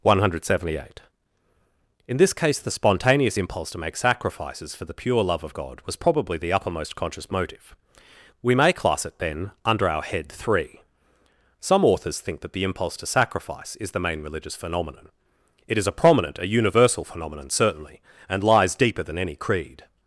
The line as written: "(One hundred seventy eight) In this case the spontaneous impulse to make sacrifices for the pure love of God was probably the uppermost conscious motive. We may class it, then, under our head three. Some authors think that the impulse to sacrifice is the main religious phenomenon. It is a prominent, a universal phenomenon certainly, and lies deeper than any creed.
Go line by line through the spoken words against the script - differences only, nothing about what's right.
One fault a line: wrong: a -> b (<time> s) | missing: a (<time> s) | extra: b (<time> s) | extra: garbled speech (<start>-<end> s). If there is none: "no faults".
no faults